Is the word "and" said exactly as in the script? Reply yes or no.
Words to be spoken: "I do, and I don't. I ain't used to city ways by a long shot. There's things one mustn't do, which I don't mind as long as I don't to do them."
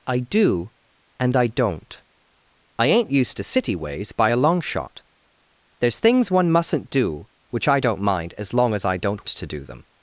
yes